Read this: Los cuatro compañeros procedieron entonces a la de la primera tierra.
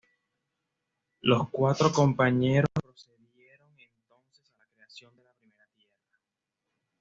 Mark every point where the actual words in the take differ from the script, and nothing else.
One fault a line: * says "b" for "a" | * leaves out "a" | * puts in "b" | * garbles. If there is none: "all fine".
* puts in "creación"